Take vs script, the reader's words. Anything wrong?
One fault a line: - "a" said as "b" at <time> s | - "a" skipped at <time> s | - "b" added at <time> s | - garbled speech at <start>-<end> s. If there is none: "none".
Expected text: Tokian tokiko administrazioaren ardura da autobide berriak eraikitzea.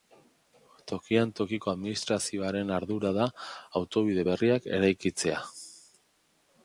none